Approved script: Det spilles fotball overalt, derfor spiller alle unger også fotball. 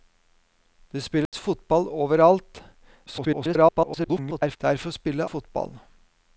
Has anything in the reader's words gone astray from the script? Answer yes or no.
yes